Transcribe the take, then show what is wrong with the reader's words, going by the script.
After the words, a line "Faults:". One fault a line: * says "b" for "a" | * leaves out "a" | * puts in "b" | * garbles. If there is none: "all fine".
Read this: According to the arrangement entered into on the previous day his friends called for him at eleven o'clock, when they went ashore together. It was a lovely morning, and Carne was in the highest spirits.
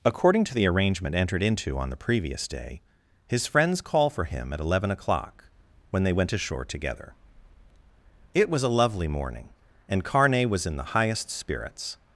According to the arrangement entered into on the previous day his friends call for him at eleven o'clock, when they went ashore together. It was a lovely morning, and Carne was in the highest spirits.
Faults:
* says "call" for "called"